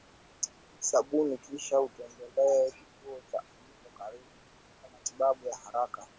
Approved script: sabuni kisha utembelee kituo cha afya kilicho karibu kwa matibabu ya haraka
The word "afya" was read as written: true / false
false